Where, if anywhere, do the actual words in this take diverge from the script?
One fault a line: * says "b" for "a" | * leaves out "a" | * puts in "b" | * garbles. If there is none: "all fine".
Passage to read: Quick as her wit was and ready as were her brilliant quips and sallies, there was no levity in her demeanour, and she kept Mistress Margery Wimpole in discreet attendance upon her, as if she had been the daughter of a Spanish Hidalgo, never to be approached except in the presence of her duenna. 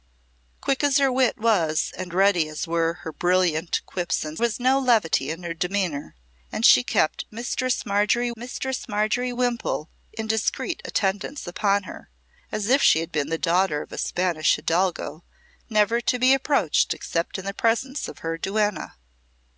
* leaves out "sallies there"
* puts in "Mistress Margery"